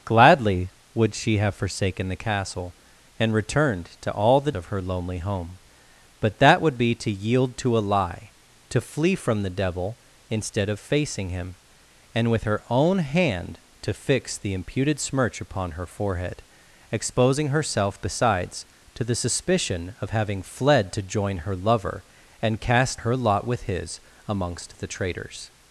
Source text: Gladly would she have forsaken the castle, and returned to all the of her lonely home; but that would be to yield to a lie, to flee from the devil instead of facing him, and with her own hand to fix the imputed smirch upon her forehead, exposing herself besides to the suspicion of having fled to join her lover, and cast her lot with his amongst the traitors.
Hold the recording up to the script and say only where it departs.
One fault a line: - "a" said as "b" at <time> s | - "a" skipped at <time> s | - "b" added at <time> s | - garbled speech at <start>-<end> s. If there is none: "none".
none